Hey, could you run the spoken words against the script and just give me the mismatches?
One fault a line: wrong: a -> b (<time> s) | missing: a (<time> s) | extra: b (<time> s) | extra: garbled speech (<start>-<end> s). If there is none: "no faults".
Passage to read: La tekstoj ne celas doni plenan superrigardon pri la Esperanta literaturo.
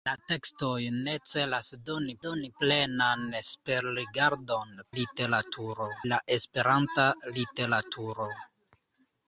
extra: doni (2.3 s)
wrong: pri -> literaturo (5.0 s)